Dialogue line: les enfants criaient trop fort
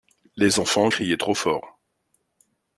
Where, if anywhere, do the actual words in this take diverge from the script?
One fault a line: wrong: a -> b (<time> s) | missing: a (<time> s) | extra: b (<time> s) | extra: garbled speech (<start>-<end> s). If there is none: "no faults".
no faults